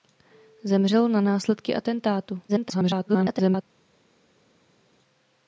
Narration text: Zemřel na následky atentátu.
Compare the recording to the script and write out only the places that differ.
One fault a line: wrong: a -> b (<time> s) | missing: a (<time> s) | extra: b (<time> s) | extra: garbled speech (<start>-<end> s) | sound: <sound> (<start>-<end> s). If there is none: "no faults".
extra: garbled speech (2.5-3.6 s)